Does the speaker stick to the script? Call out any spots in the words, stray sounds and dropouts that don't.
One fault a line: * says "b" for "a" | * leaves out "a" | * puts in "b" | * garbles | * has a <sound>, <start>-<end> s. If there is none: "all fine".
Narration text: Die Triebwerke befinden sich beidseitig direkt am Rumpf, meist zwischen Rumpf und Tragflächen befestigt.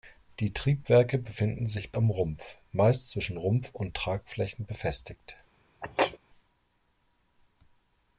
* leaves out "beidseitig direkt"
* has a sneeze, 5.8-6.2 s